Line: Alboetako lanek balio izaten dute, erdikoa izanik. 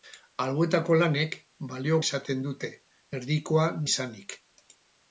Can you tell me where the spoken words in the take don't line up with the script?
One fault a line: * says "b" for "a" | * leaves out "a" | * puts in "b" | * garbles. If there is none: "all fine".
all fine